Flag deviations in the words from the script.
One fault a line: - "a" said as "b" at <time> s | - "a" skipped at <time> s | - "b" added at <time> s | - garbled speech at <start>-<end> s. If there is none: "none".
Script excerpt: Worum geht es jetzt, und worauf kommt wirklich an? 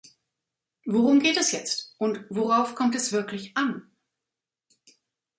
- "es" added at 3.0 s